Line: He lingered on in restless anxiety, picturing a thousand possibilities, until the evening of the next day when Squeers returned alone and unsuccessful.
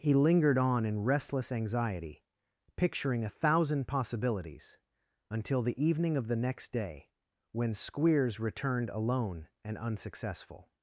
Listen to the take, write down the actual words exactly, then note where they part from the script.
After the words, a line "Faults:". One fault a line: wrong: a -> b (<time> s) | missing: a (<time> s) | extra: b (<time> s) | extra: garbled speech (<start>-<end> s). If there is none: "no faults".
He lingered on in restless anxiety, picturing a thousand possibilities, until the evening of the next day when Squeers returned alone and unsuccessful.
Faults:
no faults